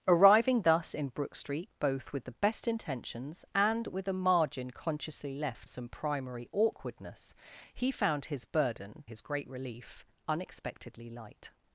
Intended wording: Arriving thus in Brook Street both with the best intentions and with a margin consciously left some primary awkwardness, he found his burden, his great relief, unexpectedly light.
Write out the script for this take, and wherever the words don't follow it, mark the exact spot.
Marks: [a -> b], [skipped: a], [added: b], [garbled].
Arriving thus in Brook Street both with the best intentions and with a margin consciously left some primary awkwardness, he found his burden, his great relief, unexpectedly light.